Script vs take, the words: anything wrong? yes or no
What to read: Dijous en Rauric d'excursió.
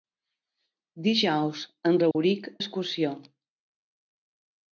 no